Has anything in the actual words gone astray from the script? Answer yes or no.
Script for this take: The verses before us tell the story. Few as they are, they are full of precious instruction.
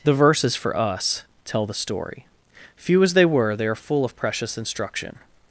yes